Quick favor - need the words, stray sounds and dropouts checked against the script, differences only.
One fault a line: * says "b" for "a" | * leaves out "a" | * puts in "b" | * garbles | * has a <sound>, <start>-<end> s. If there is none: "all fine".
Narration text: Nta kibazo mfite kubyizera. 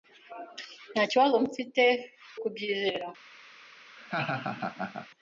* has a laugh, 4.0-5.1 s